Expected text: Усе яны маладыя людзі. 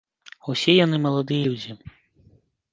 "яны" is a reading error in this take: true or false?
false